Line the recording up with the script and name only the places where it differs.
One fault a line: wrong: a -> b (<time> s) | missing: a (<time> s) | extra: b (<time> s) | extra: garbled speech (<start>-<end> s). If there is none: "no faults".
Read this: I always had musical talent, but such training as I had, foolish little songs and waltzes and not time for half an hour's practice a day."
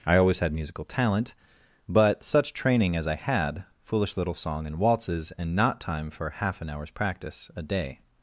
wrong: songs -> song (4.3 s)